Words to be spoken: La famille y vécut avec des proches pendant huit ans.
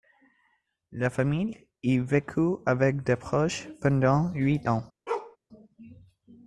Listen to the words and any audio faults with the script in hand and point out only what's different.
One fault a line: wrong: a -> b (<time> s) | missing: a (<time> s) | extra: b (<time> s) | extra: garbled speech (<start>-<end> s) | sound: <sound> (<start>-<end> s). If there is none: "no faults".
sound: bark (5.1-5.4 s)